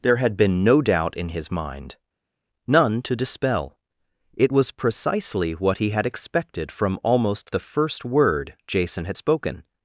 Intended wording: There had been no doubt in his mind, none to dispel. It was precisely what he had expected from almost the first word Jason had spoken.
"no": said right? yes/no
yes